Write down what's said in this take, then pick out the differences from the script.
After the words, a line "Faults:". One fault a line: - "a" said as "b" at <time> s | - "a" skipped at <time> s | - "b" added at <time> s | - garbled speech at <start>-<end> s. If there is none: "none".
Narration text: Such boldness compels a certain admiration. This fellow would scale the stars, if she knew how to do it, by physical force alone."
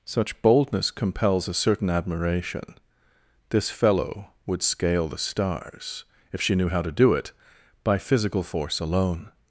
Such boldness compels a certain admiration. This fellow would scale the stars, if she knew how to do it, by physical force alone."
Faults:
none